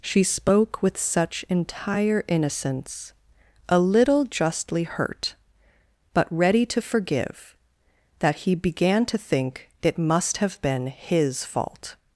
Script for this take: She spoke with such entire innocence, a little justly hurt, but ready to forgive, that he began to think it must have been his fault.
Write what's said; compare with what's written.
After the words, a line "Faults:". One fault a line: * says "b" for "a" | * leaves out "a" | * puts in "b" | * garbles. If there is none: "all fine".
She spoke with such entire innocence, a little justly hurt, but ready to forgive, that he began to think it must have been his fault.
Faults:
all fine